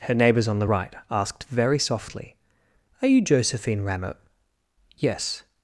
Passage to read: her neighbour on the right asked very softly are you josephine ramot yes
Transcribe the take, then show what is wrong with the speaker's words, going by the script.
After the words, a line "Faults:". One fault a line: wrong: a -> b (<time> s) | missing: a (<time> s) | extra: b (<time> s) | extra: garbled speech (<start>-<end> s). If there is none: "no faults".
her neighbours on the right asked very softly are you josephine ramot yes
Faults:
wrong: neighbour -> neighbours (0.1 s)